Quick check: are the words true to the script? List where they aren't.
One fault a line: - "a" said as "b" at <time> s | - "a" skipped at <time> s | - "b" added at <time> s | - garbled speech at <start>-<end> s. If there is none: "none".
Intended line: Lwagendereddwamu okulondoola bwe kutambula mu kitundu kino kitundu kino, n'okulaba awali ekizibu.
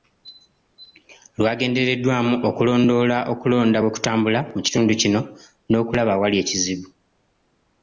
- "okulonda" added at 3.3 s
- "kitundu kino" skipped at 5.2 s